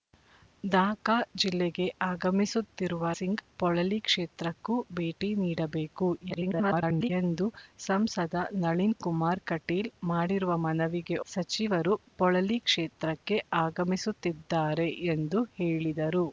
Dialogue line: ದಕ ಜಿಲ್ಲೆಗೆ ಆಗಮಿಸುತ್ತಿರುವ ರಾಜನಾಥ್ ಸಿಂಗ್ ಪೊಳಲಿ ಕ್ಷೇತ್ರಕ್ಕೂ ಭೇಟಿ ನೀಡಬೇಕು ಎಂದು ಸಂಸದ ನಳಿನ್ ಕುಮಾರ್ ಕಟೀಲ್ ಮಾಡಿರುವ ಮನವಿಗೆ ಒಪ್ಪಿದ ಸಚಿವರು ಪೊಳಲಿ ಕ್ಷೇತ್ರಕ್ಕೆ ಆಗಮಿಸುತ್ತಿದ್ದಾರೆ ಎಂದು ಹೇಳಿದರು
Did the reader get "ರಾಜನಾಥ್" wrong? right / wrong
wrong